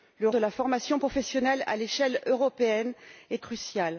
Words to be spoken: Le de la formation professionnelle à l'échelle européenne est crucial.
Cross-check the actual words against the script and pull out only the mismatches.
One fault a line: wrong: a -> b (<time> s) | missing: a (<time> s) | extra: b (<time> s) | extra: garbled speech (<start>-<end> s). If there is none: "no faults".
no faults